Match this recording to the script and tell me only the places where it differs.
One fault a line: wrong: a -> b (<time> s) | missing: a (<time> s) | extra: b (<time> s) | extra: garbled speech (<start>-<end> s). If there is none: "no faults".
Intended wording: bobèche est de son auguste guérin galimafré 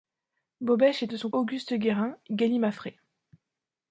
no faults